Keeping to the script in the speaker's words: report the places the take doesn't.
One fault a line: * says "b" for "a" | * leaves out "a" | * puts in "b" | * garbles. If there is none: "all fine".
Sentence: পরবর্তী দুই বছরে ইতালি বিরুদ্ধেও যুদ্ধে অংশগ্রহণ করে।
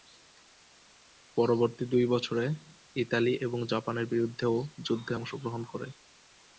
* puts in "এবং জাপানের"